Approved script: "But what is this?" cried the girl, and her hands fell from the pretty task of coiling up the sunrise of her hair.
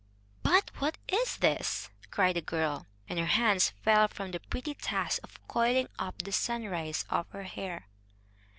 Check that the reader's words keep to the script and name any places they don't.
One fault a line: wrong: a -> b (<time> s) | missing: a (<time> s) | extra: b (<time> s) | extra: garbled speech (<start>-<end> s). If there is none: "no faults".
no faults